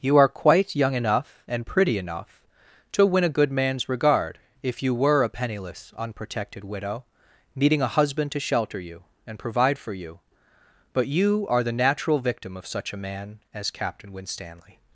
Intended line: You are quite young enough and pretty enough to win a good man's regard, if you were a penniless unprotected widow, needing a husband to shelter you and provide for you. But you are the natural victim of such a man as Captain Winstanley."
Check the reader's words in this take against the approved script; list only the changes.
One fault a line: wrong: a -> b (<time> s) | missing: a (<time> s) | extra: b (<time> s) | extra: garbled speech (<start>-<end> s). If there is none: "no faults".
no faults